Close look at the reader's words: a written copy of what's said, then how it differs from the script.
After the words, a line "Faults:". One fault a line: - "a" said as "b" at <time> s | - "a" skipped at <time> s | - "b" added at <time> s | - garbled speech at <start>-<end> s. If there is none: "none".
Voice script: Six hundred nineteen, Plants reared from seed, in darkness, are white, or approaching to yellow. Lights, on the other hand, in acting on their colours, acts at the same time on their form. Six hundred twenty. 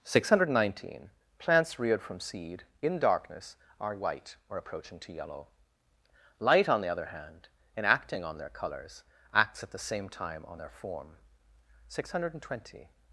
Six hundred nineteen, Plants reared from seed, in darkness, are white, or approaching to yellow. Light, on the other hand, in acting on their colours, acts at the same time on their form. Six hundred twenty.
Faults:
- "Lights" said as "Light" at 6.4 s